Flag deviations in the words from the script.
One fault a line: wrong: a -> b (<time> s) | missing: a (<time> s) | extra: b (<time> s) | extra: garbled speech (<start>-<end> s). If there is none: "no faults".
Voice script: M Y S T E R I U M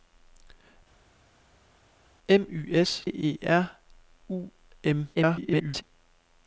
missing: T (3.1 s)
missing: I (3.7 s)
extra: garbled speech (5.1-5.8 s)